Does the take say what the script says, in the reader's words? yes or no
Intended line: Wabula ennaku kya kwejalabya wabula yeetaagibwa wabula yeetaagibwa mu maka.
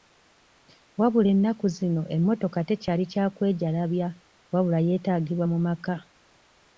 no